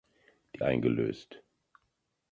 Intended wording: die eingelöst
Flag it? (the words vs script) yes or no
no